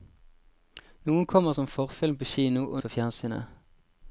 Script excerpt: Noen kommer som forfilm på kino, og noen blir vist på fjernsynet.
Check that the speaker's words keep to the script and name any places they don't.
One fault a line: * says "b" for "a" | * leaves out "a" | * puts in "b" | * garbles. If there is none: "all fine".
* leaves out "noen blir vist"